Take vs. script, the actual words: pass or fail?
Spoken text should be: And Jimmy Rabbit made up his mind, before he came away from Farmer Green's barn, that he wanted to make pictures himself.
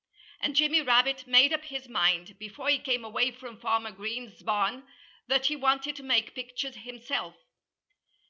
pass